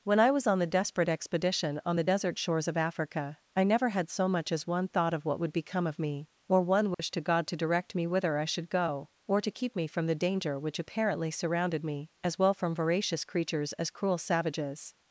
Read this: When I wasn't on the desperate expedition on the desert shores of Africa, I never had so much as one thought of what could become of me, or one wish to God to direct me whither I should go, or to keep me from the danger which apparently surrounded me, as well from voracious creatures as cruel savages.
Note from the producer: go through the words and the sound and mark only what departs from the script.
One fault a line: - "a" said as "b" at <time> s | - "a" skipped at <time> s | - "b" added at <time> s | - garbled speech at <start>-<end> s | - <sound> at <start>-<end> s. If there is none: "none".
- "wasn't" said as "was" at 0.3 s
- "could" said as "would" at 5.4 s
- dropout at 6.9-7.0 s